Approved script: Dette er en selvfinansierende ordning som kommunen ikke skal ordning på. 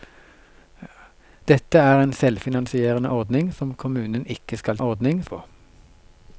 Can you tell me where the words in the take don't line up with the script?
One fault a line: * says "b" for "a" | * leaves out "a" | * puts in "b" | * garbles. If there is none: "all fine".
all fine